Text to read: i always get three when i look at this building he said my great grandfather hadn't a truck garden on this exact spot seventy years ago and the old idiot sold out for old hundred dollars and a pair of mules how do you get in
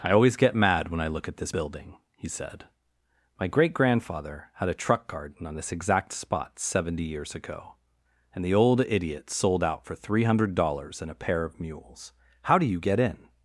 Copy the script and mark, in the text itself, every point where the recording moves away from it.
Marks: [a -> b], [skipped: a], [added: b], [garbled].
i always get [three -> mad] when i look at this building he said my great grandfather [hadn't -> had] a truck garden on this exact spot seventy years ago and the old idiot sold out for [old -> three] hundred dollars and a pair of mules how do you get in